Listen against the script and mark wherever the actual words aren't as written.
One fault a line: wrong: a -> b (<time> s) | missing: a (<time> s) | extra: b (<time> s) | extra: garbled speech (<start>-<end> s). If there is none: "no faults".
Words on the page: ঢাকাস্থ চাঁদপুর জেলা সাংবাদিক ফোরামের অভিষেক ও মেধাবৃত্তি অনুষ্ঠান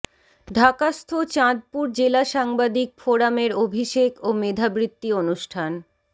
no faults